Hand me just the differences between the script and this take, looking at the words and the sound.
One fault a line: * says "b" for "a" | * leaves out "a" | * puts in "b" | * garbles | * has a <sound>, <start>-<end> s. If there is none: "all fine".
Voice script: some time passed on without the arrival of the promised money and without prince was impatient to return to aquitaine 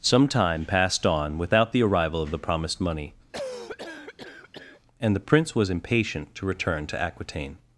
* has a cough, 3.3-4.8 s
* says "the" for "without"